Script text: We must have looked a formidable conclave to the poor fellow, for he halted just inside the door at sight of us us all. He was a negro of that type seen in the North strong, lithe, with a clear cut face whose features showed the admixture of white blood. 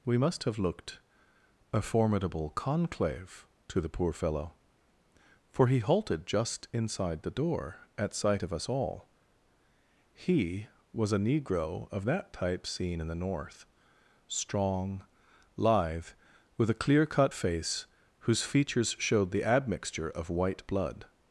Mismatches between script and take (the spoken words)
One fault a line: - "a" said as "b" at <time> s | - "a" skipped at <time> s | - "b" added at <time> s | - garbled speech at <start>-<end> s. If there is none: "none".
- "us" skipped at 8.7 s